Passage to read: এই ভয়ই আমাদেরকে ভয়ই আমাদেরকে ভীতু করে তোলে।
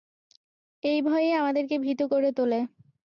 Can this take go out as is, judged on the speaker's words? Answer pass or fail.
fail